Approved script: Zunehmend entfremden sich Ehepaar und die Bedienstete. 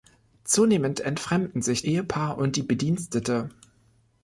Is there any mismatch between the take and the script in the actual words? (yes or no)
no